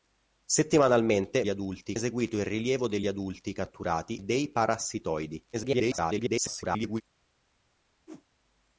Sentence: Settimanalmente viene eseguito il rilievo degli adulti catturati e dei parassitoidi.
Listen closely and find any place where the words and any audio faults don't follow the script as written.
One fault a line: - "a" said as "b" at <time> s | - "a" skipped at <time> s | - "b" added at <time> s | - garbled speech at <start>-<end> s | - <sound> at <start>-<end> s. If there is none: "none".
- "viene" said as "adulti" at 1.5 s
- "e" skipped at 4.2 s
- garbled speech at 5.5-7.0 s
- whoosh at 8.1-8.3 s